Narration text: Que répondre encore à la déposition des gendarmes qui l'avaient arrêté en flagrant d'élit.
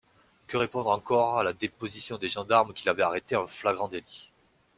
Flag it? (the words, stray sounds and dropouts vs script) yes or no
no